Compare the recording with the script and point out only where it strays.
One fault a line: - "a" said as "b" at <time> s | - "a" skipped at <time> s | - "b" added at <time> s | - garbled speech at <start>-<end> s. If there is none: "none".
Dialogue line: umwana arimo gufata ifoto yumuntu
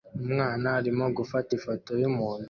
none